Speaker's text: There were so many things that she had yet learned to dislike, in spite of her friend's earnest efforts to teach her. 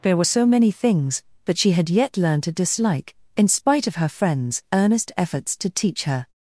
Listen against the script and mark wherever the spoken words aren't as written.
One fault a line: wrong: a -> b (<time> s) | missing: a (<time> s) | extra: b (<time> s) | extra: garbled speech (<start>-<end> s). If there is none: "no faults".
no faults